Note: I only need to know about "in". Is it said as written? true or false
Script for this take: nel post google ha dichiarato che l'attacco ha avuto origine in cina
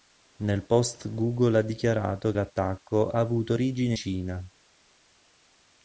false